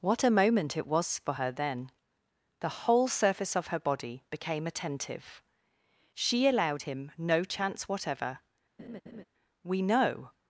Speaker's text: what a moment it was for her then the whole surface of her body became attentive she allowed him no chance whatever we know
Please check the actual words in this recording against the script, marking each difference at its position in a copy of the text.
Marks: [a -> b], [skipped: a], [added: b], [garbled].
what a moment it was for her then the whole surface of her body became attentive she allowed him no chance whatever we know